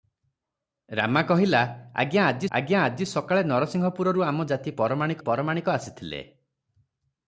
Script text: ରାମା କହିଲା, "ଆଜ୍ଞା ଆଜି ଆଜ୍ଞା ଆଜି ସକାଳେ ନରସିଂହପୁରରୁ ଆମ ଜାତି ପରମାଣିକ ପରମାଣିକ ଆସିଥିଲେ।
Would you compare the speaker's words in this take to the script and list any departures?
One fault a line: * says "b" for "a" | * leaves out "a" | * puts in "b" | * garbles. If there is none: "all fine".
all fine